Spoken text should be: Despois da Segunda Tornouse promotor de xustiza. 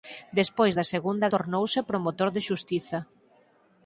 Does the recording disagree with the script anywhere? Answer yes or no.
no